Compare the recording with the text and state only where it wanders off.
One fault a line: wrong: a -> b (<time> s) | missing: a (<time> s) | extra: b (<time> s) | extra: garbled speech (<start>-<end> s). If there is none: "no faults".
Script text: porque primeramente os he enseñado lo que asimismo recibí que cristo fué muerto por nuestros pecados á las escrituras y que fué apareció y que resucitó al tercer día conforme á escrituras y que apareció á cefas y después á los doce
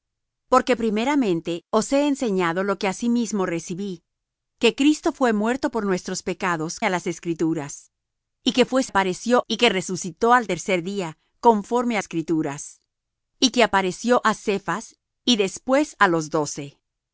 no faults